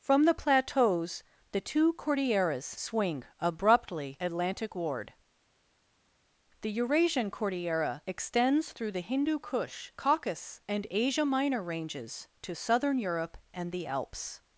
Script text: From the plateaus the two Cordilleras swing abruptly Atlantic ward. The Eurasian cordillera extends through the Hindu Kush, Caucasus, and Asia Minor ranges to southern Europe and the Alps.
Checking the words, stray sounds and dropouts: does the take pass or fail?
pass